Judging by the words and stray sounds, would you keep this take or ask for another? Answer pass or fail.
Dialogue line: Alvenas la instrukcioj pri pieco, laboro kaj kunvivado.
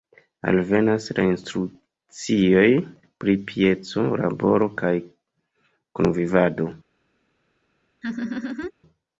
fail